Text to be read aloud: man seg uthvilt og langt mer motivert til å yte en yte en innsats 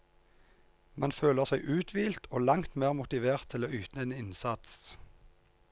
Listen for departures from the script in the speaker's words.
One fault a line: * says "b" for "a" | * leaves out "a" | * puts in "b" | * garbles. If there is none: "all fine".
* puts in "føler"
* leaves out "yte en"